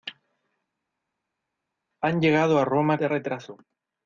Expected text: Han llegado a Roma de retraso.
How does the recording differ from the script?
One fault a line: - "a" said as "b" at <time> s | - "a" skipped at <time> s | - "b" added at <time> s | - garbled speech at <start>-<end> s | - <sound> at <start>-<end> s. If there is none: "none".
none